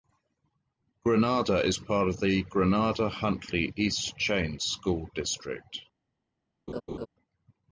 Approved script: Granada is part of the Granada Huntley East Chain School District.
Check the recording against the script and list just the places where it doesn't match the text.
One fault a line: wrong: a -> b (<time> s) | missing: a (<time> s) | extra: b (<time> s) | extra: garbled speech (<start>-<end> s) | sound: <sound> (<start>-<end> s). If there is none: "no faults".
sound: laugh (6.7-7.1 s)